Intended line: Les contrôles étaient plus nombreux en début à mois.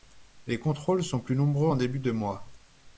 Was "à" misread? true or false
true